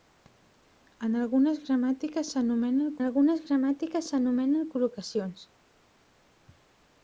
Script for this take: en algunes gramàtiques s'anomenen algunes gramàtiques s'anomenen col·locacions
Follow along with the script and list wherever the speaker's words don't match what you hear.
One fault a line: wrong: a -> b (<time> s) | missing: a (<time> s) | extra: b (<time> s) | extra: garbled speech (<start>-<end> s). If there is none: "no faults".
no faults